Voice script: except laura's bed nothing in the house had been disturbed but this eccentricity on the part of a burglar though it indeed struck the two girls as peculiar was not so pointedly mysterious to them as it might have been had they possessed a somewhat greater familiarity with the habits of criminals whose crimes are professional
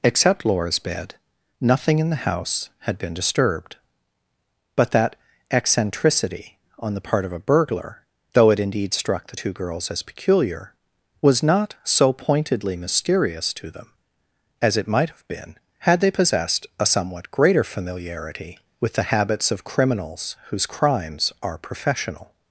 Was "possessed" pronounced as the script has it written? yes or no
yes